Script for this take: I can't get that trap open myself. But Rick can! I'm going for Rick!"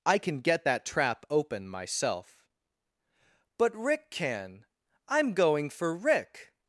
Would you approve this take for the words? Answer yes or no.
no